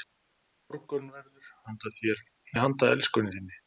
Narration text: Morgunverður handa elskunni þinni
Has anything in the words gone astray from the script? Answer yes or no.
no